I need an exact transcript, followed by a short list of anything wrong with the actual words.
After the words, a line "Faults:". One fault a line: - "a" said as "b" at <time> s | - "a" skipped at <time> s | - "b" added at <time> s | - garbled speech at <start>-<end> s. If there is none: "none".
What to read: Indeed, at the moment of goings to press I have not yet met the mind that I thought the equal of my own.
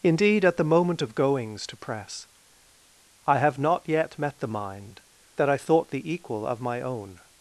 Indeed, at the moment of goings to press I have not yet met the mind that I thought the equal of my own.
Faults:
none